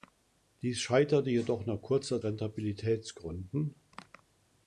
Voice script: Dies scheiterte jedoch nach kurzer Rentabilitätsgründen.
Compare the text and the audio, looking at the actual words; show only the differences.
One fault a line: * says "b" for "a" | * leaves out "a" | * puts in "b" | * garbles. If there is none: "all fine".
all fine